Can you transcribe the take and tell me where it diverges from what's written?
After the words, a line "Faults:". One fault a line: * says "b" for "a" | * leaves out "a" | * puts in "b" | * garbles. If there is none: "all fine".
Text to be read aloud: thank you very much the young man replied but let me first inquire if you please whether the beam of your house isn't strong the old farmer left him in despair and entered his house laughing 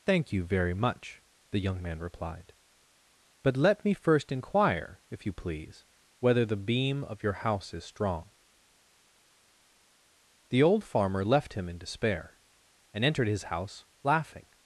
thank you very much the young man replied but let me first inquire if you please whether the beam of your house is strong the old farmer left him in despair and entered his house laughing
Faults:
* says "is" for "isn't"